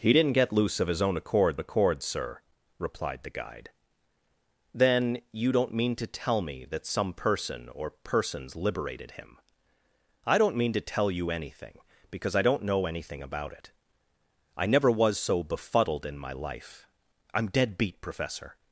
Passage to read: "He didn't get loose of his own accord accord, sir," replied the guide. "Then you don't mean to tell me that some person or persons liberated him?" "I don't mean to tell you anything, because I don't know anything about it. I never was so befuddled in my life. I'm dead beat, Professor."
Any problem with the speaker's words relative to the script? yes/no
no